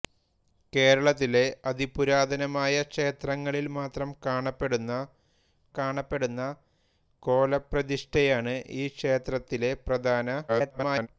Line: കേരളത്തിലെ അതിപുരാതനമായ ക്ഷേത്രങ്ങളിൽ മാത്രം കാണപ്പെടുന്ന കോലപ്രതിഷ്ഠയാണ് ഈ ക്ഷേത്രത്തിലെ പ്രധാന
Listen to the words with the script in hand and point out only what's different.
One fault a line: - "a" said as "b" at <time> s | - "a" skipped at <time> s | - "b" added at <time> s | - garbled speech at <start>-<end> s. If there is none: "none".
- "കാണപ്പെടുന്ന" added at 5.8 s
- garbled speech at 10.5-11.1 s